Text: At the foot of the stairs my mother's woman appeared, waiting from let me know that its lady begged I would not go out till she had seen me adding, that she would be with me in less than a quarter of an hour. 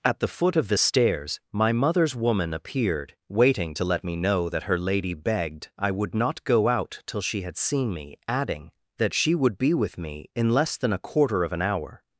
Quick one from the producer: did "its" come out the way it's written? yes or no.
no